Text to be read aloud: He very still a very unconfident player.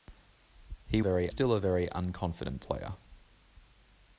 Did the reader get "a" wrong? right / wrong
right